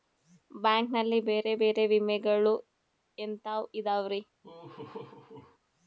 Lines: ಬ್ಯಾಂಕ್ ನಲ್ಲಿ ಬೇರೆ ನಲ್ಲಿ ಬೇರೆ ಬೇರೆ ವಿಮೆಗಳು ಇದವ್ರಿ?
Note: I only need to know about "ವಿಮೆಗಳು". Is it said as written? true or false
false